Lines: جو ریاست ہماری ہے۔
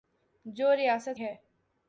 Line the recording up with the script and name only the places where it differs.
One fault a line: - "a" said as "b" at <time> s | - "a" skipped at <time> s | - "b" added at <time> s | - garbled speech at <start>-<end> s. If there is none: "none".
- "ہماری" skipped at 1.2 s